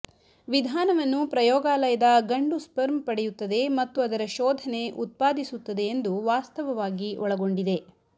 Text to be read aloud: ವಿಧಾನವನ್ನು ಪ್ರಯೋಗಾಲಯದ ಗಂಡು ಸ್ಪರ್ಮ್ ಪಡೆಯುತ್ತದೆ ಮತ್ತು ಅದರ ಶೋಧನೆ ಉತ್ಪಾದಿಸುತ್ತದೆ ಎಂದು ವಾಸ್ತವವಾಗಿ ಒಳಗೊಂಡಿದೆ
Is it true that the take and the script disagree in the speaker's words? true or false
false